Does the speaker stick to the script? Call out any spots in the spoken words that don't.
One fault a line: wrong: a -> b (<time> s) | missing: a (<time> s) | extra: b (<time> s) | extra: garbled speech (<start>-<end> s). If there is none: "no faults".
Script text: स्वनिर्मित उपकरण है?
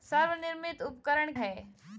no faults